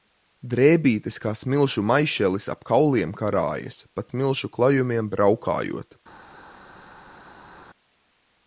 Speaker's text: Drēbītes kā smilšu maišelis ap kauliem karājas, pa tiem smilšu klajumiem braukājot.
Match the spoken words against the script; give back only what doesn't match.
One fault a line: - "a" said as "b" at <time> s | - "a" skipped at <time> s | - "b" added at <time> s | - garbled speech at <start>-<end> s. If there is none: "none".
- "tiem" skipped at 4.1 s